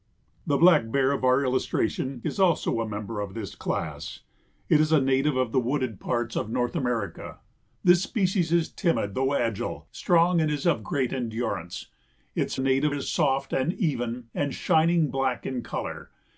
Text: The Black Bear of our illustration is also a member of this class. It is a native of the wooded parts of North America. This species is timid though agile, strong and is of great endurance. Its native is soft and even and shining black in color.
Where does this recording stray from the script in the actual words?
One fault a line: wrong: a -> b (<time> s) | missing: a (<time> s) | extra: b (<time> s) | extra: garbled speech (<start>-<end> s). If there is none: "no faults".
no faults